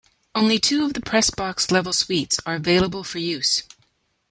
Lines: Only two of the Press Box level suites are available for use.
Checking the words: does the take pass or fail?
pass